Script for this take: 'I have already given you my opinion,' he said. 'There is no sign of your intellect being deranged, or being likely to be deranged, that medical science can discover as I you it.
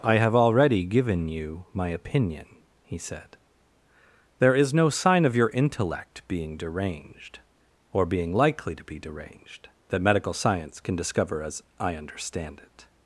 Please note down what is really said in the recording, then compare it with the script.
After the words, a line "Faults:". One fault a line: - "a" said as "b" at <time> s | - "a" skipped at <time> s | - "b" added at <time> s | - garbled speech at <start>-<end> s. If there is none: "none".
'I have already given you my opinion,' he said. 'There is no sign of your intellect being deranged, or being likely to be deranged, that medical science can discover as I understand it.
Faults:
- "you" said as "understand" at 11.9 s